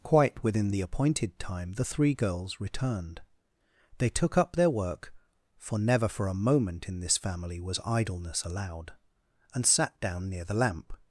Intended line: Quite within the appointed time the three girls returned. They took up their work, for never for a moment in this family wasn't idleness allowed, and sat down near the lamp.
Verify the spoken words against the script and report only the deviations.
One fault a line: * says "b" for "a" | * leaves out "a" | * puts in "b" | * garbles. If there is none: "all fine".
* says "was" for "wasn't"